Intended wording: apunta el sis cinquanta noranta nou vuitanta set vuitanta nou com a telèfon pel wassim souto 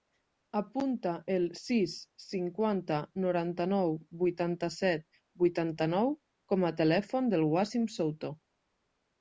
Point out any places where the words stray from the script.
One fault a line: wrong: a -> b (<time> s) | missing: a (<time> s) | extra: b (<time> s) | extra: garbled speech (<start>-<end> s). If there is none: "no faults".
wrong: pel -> del (7.3 s)